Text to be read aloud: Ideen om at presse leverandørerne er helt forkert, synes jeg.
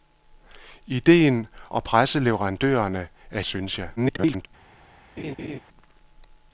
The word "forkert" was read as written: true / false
false